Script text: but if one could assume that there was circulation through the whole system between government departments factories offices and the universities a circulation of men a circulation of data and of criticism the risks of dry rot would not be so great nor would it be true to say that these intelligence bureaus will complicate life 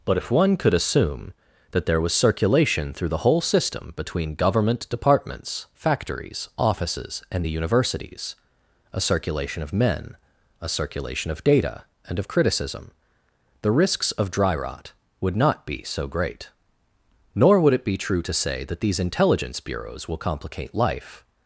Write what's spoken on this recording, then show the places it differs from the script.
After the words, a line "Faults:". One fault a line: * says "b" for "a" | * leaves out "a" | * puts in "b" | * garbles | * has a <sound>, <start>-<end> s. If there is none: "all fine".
but if one could assume that there was circulation through the whole system between government departments factories offices and the universities a circulation of men a circulation of data and of criticism the risks of dry rot would not be so great nor would it be true to say that these intelligence bureaus will complicate life
Faults:
all fine